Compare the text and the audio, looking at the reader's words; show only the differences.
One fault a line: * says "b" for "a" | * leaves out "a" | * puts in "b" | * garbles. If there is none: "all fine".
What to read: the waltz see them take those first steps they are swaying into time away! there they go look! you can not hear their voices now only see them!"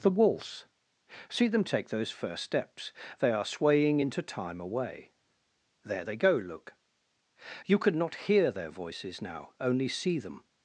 * says "could" for "can"